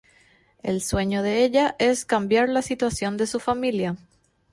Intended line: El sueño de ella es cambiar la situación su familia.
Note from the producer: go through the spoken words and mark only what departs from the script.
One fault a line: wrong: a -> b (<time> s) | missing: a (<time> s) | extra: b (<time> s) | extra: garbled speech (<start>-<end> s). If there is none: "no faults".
extra: de (3.2 s)